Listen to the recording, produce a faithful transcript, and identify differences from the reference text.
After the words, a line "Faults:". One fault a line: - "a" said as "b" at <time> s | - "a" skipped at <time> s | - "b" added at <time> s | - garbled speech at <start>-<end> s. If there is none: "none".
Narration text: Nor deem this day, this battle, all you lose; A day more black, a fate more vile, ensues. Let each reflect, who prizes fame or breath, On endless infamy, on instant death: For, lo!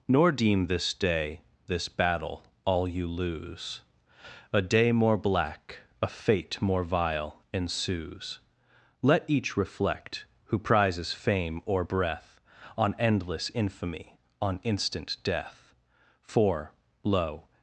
Nor deem this day, this battle, all you lose; A day more black, a fate more vile, ensues. Let each reflect, who prizes fame or breath, On endless infamy, on instant death: For, lo!
Faults:
none